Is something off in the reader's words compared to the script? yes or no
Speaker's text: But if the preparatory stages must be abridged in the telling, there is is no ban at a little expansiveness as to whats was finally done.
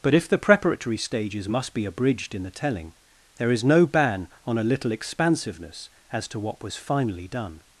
yes